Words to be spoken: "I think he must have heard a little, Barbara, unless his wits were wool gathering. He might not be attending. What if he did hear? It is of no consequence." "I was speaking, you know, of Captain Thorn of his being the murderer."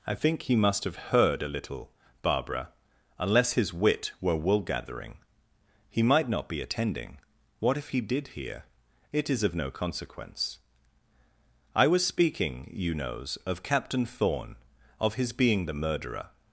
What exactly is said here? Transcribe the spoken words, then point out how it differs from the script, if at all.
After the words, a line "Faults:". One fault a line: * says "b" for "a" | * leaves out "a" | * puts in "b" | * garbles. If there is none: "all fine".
"I think he must have heard a little, Barbara, unless his wit were wool gathering. He might not be attending. What if he did hear? It is of no consequence." "I was speaking, you knows, of Captain Thorn of his being the murderer."
Faults:
* says "wit" for "wits"
* says "knows" for "know"